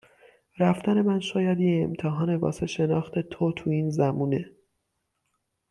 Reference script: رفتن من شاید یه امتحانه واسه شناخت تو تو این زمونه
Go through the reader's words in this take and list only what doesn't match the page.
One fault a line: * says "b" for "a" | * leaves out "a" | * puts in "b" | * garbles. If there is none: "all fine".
all fine